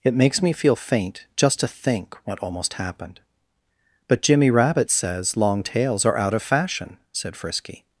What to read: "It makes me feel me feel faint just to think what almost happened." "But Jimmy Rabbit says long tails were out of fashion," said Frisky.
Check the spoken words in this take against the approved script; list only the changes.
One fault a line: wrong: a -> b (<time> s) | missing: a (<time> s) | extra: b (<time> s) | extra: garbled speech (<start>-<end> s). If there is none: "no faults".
missing: me feel (0.8 s)
wrong: were -> are (6.0 s)